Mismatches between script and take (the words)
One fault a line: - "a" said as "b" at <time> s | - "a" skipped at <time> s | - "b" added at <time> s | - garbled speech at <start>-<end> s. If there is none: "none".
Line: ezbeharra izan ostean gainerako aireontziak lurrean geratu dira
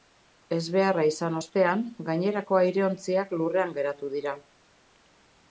none